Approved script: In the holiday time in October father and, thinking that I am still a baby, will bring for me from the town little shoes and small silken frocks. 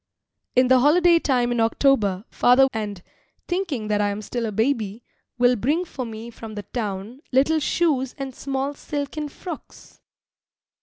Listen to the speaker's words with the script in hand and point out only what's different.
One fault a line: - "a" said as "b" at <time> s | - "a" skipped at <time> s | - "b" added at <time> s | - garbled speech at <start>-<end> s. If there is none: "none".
none